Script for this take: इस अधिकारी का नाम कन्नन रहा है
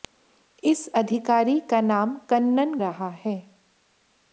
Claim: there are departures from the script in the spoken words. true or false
false